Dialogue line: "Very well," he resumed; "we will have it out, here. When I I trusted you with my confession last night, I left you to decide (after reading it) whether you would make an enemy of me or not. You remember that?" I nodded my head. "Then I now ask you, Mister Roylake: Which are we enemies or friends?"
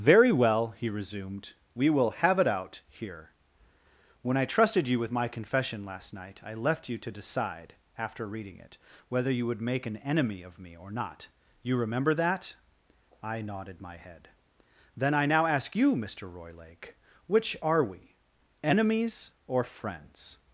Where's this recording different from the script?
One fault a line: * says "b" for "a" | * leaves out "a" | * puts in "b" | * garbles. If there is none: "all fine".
* leaves out "I"